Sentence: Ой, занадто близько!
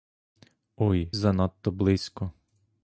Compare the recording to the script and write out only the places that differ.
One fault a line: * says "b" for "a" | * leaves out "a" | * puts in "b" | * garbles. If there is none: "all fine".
all fine